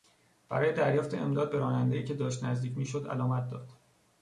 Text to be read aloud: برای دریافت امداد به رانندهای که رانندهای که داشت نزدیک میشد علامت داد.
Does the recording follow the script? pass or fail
fail